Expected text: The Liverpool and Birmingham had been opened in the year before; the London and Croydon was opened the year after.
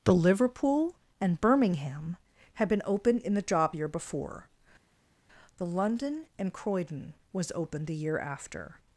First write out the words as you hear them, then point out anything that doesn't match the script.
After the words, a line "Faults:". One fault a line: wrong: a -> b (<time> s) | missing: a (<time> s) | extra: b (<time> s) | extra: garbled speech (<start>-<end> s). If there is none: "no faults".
The Liverpool and Birmingham had been opened in the job year before; the London and Croydon was opened the year after.
Faults:
extra: job (3.4 s)